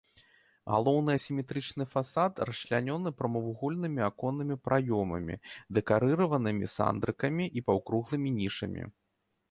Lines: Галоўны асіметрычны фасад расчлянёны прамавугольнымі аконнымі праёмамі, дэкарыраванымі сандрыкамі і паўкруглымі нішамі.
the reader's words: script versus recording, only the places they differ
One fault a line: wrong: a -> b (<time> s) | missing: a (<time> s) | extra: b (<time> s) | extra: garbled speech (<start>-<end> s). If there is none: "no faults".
no faults